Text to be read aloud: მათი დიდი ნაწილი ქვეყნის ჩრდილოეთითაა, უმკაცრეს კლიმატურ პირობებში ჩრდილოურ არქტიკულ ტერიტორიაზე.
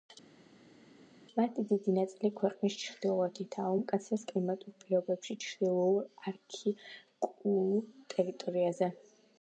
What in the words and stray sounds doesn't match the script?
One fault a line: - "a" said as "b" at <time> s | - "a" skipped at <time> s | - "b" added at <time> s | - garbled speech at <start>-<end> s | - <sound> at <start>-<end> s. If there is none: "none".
none